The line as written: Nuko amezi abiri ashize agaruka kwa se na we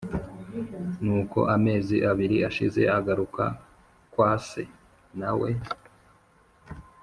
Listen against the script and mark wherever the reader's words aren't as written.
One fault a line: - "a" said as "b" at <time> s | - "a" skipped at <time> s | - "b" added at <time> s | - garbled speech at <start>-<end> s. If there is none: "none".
none